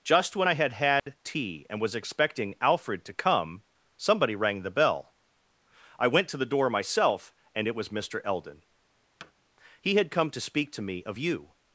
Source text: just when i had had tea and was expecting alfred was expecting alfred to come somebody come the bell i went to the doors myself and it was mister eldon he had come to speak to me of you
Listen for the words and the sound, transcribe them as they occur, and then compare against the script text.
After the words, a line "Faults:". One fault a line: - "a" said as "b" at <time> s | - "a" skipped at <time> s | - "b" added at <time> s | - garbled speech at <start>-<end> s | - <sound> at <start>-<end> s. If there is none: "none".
just when i had had tea and was expecting alfred to come somebody rang the bell i went to the door myself and it was mister eldon he had come to speak to me of you
Faults:
- dropout at 1.0-1.1 s
- "was expecting alfred" skipped at 3.0 s
- "come" said as "rang" at 4.4 s
- "doors" said as "door" at 6.5 s
- thud at 9.2-9.3 s